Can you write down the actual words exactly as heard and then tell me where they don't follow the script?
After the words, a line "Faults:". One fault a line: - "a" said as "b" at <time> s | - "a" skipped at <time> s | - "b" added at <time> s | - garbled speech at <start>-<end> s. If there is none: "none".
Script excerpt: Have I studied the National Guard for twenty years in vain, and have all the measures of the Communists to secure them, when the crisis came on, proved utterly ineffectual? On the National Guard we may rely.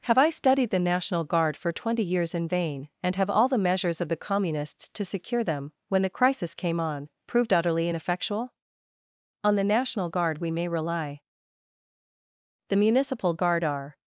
Have I studied the National Guard for twenty years in vain, and have all the measures of the Communists to secure them, when the crisis came on, proved utterly ineffectual? On the National Guard we may rely. The Municipal Guard are
Faults:
- "The Municipal Guard are" added at 12.7 s